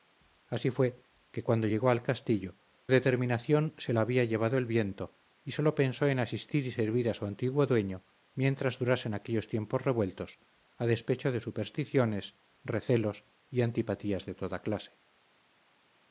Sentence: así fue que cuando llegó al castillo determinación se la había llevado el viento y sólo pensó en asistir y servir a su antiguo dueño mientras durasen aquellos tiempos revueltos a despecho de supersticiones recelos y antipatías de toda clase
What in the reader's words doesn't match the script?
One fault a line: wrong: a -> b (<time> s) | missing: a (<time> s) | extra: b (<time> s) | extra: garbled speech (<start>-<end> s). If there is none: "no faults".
no faults